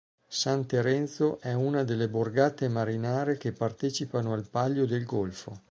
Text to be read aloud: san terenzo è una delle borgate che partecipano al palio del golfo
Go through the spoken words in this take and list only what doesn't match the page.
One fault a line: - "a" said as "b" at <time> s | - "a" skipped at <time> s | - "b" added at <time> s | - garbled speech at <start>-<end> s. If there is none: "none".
- "marinare" added at 2.7 s